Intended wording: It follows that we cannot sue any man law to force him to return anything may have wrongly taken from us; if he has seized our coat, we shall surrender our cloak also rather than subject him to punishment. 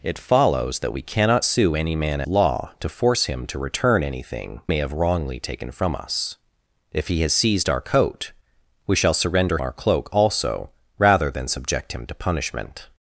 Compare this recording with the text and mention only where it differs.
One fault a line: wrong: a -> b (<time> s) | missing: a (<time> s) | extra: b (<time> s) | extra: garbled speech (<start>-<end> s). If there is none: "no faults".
no faults